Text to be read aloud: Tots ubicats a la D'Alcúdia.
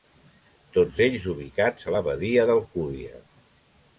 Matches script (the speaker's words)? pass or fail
fail